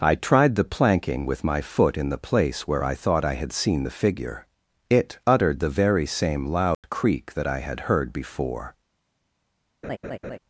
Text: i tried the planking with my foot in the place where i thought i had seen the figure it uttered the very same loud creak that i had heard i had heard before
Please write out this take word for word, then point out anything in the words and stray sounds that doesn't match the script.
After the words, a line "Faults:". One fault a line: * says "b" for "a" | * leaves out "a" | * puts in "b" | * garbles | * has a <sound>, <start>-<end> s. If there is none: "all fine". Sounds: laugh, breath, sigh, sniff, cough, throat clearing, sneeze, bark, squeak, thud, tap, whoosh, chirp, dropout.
i tried the planking with my foot in the place where i thought i had seen the figure it uttered the very same loud creak that i had heard before
Faults:
* has a dropout, 6.7-6.8 s
* leaves out "i had heard"
* has a laugh, 9.8-10.4 s